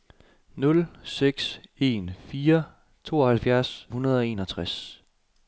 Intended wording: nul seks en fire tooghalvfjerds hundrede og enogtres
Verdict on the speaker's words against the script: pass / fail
pass